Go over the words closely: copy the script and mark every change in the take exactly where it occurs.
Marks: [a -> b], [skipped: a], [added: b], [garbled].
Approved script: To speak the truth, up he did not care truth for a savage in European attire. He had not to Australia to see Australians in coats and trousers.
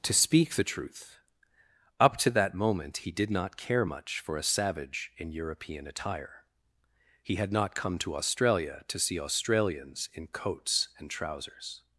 To speak the truth, up [added: to that moment] he did not care [truth -> much] for a savage in European attire. He had not [added: come] to Australia to see Australians in coats and trousers.